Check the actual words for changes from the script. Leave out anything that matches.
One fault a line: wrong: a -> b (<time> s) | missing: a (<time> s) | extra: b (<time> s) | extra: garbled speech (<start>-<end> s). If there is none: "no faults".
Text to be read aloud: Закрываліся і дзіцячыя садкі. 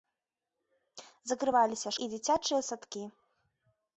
no faults